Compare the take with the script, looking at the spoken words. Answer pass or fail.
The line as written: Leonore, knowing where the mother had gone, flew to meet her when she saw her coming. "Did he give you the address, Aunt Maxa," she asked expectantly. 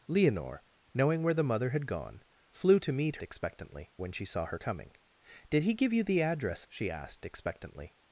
fail